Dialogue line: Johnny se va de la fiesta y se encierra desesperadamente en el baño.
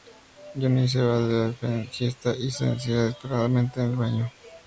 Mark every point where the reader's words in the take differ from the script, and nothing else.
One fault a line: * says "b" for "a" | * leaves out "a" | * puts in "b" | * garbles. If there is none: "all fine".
all fine